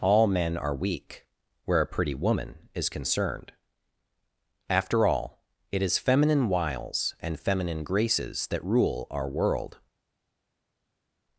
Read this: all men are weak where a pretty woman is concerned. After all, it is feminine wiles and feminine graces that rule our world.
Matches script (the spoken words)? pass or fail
pass